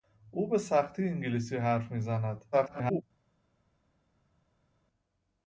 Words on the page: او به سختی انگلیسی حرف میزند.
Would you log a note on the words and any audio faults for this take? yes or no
yes